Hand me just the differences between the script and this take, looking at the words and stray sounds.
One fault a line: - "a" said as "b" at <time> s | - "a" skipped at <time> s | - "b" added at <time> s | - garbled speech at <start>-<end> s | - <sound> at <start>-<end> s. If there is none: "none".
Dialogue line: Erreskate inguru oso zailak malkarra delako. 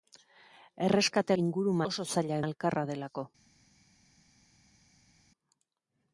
none